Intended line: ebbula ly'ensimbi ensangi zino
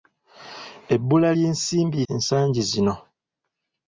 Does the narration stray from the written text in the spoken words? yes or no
no